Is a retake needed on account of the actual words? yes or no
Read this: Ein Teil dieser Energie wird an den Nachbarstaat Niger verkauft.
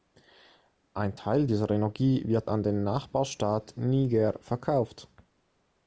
no